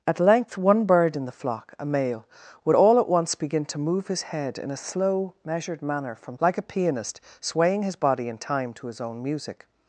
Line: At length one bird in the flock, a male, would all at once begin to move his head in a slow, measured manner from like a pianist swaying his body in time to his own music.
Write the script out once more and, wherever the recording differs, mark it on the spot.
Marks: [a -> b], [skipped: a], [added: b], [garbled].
At length one bird in the flock, a male, would all at once begin to move his head in a slow, measured manner from like a pianist swaying his body in time to his own music.